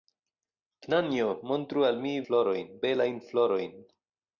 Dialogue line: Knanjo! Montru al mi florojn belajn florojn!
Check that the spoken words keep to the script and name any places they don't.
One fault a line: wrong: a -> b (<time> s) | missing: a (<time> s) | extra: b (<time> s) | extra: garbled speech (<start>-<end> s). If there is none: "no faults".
no faults